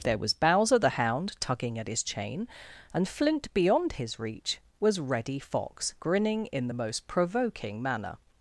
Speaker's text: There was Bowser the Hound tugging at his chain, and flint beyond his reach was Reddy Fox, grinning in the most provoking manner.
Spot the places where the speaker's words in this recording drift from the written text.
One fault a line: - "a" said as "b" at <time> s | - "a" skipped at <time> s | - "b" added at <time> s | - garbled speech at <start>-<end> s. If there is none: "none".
none